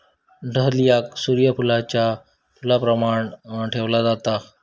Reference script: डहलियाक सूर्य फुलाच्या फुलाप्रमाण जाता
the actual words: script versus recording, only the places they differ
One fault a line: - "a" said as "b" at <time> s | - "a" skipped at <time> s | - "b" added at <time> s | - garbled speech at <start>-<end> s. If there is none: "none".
- "ठेवला" added at 3.7 s